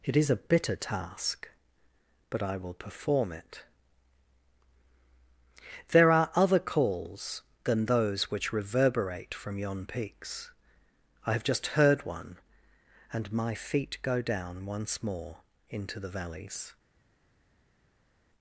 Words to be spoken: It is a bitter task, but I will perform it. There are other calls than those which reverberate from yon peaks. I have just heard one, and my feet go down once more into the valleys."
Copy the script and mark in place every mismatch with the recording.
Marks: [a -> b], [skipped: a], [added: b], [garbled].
It is a bitter task, but I will perform it. There are other calls than those which reverberate from yon peaks. I have just heard one, and my feet go down once more into the valleys."